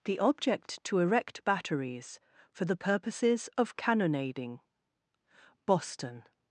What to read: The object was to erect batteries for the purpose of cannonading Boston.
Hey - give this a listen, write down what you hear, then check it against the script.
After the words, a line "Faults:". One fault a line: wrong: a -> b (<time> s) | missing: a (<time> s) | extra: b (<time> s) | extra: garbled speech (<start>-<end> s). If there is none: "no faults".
The object to erect batteries for the purposes of cannonading Boston.
Faults:
missing: was (0.8 s)
wrong: purpose -> purposes (2.8 s)